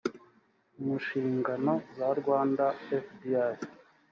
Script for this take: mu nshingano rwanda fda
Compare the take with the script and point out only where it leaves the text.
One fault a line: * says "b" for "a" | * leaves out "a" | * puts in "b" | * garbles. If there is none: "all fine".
* puts in "za"